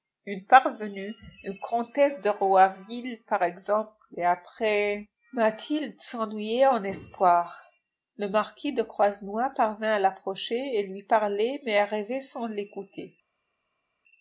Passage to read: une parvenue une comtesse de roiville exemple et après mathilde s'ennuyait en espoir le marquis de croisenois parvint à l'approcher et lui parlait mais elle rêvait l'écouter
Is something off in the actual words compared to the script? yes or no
yes